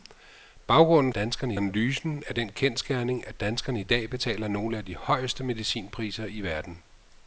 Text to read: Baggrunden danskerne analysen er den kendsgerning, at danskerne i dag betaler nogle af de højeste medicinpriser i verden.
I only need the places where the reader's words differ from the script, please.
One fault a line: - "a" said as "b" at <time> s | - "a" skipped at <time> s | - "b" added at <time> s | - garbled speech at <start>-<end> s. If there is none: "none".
none